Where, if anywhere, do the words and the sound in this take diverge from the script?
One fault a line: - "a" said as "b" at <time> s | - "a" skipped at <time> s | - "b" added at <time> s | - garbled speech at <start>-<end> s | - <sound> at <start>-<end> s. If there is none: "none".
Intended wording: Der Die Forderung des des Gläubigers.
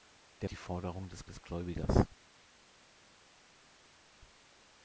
none